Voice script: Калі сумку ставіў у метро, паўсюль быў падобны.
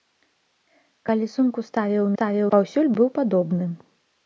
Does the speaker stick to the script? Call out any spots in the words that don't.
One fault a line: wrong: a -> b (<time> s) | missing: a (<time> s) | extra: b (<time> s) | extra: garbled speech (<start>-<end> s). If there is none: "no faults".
wrong: метро -> ставіў (2.1 s)